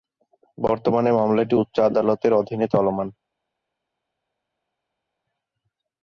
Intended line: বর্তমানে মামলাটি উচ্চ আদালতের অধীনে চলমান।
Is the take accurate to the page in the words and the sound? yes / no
yes